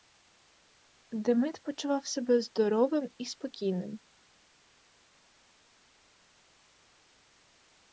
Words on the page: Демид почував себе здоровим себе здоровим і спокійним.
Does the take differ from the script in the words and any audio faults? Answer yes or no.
yes